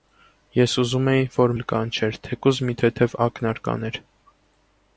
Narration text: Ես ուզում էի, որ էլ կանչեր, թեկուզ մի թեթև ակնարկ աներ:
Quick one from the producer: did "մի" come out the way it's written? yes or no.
yes